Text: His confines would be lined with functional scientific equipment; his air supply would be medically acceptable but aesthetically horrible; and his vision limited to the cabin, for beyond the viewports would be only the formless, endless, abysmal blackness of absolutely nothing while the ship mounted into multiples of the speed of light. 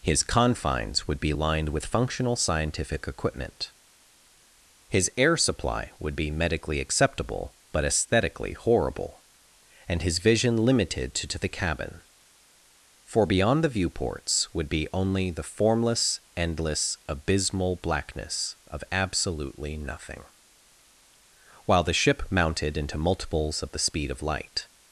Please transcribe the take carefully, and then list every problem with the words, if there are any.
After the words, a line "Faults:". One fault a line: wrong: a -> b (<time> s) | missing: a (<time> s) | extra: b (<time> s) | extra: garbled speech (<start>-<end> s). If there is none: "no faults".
His confines would be lined with functional scientific equipment; his air supply would be medically acceptable but aesthetically horrible; and his vision limited to to the cabin, for beyond the viewports would be only the formless, endless, abysmal blackness of absolutely nothing while the ship mounted into multiples of the speed of light.
Faults:
extra: to (11.3 s)